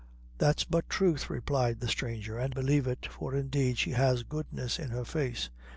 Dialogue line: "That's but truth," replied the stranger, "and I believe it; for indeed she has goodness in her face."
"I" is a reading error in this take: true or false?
true